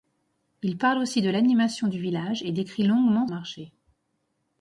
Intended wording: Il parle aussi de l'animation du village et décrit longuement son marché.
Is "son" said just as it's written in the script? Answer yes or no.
no